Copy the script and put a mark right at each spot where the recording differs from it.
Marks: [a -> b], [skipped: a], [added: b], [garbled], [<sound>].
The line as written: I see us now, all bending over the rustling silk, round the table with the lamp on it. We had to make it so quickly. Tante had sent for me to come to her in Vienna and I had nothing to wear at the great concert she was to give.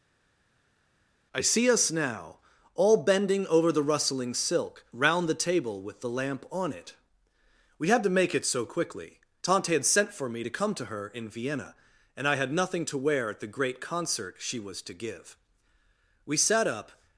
I see us now, all bending over the rustling silk, round the table with the lamp on it. We had to make it so quickly. Tante had sent for me to come to her in Vienna and I had nothing to wear at the great concert she was to give. [added: We sat up]